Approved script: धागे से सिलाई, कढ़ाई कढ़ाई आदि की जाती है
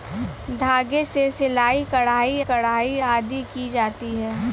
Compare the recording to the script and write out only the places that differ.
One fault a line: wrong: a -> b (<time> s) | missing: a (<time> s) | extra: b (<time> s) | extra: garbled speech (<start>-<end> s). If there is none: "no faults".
no faults